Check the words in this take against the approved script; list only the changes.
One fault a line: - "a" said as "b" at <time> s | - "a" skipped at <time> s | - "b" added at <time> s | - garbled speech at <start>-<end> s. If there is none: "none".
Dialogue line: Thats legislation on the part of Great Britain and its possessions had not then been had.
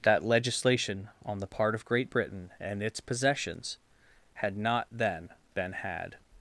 - "Thats" said as "That" at 0.0 s